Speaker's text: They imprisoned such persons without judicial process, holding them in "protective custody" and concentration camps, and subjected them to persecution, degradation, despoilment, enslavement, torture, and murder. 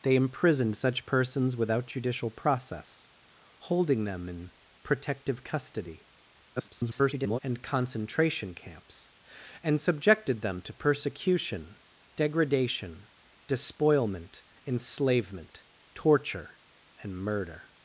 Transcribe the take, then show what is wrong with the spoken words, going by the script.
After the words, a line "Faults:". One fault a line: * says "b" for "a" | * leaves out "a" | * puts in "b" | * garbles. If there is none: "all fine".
They imprisoned such persons without judicial process, holding them in "protective custody" [garbled] and concentration camps, and subjected them to persecution, degradation, despoilment, enslavement, torture, and murder.
Faults:
* garbles